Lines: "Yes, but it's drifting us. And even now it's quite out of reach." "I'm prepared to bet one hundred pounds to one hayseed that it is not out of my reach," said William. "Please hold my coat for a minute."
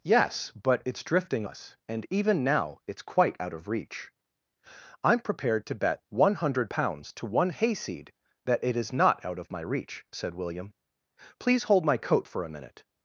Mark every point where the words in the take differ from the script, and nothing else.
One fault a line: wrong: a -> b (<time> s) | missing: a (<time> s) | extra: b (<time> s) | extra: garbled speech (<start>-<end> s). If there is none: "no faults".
no faults